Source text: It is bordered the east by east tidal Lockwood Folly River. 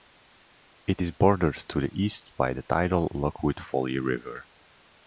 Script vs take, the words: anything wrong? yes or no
yes